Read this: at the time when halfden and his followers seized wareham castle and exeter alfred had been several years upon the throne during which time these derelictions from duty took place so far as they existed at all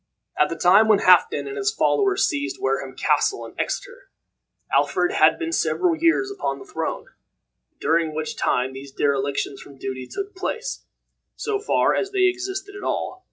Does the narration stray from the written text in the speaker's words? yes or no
no